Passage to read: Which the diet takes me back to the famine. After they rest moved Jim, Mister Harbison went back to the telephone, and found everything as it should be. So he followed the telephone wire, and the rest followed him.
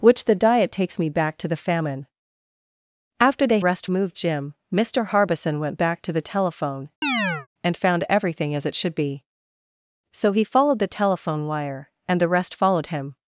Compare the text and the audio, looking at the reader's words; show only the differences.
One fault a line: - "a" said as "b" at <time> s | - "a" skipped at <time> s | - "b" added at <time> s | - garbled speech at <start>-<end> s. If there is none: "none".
none